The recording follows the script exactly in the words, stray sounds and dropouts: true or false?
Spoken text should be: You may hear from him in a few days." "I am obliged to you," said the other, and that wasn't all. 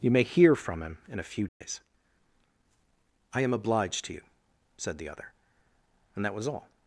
false